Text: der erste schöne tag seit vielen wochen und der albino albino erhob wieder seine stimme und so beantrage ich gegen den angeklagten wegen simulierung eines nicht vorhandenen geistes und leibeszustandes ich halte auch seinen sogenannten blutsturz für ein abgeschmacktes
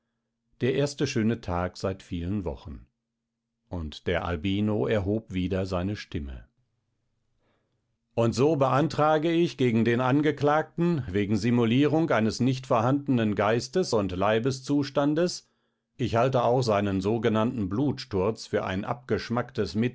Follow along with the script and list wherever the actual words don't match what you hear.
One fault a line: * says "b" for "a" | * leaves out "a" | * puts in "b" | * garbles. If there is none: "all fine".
* leaves out "albino"